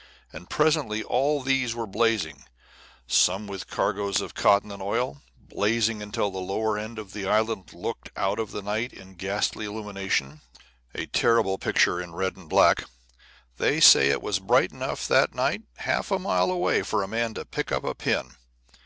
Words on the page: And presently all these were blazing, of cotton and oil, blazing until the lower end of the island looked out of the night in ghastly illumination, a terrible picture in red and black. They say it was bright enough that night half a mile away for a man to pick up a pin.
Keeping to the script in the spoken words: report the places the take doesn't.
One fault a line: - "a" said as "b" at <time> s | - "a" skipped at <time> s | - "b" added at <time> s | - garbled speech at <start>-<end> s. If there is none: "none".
- "some with cargoes" added at 3.0 s